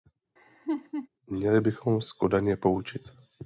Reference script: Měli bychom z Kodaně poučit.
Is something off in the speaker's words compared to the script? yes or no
no